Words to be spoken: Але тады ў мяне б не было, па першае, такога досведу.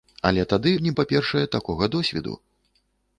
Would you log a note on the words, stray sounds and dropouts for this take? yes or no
yes